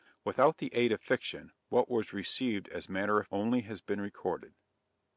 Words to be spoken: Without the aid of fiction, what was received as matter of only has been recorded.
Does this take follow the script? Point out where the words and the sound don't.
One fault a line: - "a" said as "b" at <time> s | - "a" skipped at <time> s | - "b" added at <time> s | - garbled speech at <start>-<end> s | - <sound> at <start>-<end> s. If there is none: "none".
none